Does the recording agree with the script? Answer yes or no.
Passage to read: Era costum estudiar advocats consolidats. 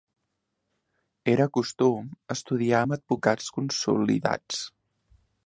no